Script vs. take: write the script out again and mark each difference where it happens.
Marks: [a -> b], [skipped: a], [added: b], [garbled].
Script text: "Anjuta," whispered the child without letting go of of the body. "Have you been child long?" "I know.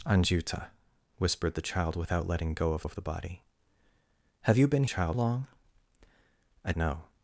"Anjuta," whispered the child without letting go of of the body. "Have you been child long?" "I know.